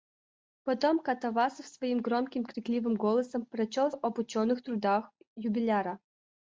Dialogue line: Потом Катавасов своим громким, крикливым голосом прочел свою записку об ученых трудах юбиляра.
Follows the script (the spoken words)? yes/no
no